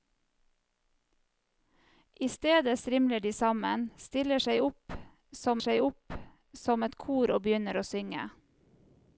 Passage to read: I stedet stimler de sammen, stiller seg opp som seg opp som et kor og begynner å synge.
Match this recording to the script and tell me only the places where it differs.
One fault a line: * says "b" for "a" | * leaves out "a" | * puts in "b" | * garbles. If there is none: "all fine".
all fine